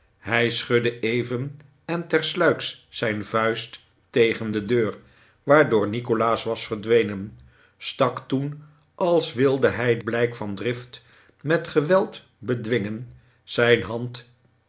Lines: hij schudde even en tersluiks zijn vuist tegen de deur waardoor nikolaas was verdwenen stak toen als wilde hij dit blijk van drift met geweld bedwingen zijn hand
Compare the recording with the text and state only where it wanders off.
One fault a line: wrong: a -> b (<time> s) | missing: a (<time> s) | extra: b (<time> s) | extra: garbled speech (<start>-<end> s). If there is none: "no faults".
missing: dit (10.0 s)